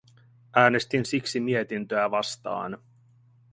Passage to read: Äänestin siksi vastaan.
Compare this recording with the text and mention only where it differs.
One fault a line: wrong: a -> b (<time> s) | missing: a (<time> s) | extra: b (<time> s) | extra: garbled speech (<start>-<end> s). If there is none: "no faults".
extra: mietintöä (1.4 s)